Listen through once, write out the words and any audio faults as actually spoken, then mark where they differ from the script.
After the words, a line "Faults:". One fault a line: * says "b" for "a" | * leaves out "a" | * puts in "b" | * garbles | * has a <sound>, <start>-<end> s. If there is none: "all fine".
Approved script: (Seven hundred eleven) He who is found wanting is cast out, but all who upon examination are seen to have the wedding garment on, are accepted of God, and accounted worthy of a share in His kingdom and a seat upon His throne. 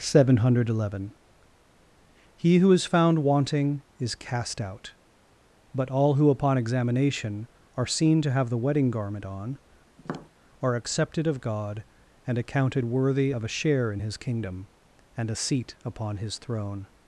(Seven hundred eleven) He who is found wanting is cast out, but all who upon examination are seen to have the wedding garment on, are accepted of God, and accounted worthy of a share in His kingdom and a seat upon His throne.
Faults:
* has a tap, 10.0-10.3 s